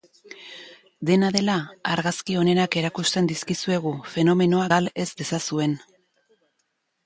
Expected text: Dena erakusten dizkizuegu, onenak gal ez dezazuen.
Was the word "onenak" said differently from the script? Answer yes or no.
yes